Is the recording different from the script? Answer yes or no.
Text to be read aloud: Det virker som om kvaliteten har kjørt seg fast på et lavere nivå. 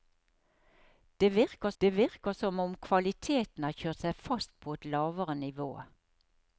yes